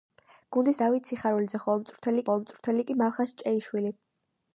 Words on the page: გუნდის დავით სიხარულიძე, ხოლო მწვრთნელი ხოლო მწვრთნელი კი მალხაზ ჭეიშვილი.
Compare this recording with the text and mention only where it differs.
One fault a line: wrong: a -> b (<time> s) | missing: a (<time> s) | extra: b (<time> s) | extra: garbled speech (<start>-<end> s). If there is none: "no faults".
no faults